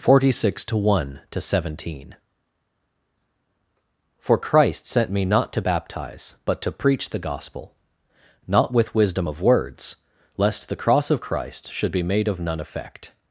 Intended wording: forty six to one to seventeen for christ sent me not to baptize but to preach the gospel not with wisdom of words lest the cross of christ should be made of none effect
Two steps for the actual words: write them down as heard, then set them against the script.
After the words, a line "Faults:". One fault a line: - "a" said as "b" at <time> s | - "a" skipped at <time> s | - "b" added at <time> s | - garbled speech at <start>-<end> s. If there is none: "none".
forty six to one to seventeen for christ sent me not to baptize but to preach the gospel not with wisdom of words lest the cross of christ should be made of none effect
Faults:
none